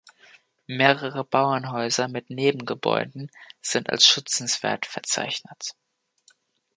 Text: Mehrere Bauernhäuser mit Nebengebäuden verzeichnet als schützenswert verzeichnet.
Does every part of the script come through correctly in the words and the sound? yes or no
no